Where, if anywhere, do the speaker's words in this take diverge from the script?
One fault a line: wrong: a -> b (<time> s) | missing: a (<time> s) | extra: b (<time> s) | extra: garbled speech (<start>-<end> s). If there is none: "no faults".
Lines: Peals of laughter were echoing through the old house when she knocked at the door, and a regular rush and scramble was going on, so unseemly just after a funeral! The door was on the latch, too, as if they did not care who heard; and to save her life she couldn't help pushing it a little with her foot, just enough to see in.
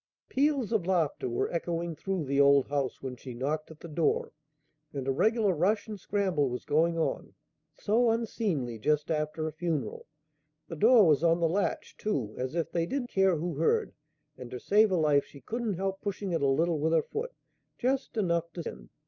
missing: not (13.0 s)
missing: see (18.6 s)